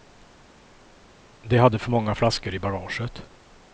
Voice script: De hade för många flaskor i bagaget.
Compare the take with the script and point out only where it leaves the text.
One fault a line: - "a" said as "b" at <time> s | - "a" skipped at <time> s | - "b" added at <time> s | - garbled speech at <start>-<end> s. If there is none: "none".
none